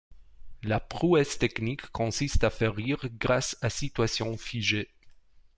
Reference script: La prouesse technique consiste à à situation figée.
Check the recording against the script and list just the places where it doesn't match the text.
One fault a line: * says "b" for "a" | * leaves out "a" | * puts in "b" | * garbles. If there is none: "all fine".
* puts in "faire rire grâce"